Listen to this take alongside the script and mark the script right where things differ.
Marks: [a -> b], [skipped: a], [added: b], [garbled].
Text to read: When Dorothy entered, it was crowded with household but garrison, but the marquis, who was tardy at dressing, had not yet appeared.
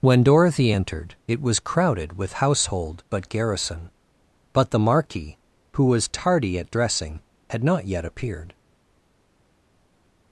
When Dorothy entered, it was crowded with household but garrison, but the marquis, who was tardy at dressing, had not yet appeared.